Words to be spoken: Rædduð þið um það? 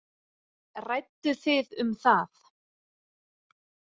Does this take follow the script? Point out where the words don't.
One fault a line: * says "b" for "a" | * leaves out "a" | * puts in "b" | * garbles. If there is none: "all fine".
all fine